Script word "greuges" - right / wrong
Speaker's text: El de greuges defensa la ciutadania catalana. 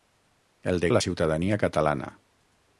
wrong